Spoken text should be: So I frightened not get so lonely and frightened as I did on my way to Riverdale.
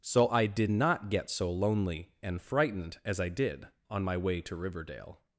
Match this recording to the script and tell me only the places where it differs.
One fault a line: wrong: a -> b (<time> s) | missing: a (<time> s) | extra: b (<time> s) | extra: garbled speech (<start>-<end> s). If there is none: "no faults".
wrong: frightened -> did (0.5 s)